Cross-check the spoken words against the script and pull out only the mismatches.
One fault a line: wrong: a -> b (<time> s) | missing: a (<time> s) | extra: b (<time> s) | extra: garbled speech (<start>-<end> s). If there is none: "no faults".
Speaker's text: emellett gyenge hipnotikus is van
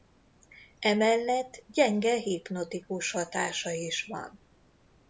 extra: hatása (3.1 s)